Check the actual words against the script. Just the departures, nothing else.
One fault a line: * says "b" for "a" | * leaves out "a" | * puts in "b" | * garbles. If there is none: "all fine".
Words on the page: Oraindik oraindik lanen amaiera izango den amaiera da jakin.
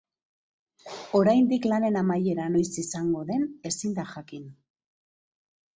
* leaves out "oraindik"
* puts in "noiz"
* says "ezin" for "amaiera"